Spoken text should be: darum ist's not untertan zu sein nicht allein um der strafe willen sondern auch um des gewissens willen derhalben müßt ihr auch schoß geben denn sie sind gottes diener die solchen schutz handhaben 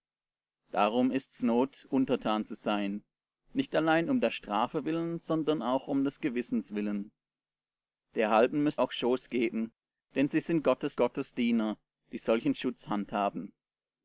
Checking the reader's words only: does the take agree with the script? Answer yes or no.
no